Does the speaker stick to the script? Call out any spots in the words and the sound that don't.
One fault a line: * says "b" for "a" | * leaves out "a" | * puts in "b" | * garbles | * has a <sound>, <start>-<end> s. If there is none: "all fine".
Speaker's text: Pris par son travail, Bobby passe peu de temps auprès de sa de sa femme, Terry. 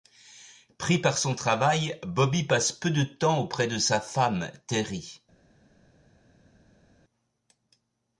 * leaves out "de sa"